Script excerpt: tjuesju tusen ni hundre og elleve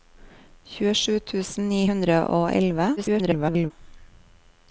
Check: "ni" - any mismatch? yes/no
no